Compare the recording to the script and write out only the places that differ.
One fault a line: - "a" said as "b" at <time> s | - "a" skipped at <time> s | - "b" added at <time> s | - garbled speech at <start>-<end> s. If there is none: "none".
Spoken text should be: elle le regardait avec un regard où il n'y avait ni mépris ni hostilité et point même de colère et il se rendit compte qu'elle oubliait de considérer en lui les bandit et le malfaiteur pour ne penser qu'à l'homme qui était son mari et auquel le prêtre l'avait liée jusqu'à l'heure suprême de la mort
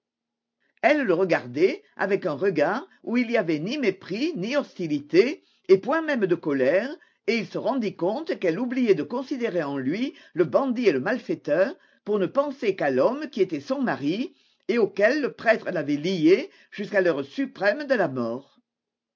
- "les" said as "le" at 10.3 s